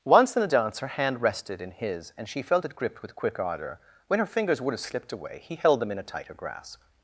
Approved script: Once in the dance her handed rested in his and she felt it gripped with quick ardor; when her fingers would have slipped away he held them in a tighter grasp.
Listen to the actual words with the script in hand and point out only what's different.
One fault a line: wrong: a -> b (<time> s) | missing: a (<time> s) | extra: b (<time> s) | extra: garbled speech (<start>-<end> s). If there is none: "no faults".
wrong: handed -> hand (0.9 s)